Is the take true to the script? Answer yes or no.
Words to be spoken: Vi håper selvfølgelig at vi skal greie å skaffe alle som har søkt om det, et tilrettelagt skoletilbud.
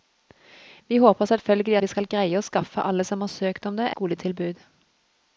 no